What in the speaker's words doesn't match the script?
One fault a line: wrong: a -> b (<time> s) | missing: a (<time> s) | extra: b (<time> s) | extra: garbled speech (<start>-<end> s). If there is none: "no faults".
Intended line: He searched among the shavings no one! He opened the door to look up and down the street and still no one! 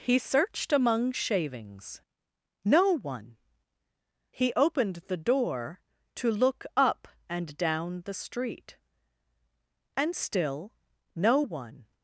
missing: the (1.1 s)